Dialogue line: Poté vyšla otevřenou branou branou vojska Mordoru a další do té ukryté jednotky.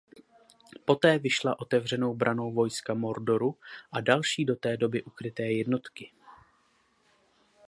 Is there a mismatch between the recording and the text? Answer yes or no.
yes